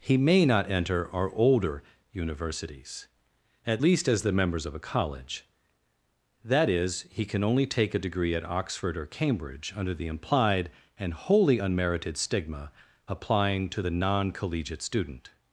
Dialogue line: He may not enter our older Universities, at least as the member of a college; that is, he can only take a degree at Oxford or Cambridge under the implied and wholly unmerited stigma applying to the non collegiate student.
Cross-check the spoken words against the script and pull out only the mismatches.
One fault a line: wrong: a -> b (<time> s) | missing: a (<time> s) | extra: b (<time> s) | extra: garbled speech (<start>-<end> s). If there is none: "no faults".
wrong: member -> members (4.3 s)